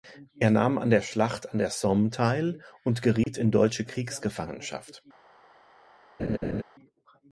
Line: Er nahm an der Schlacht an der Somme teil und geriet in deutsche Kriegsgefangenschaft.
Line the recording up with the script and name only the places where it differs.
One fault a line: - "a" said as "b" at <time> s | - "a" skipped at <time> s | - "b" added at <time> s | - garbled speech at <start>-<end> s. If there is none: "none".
none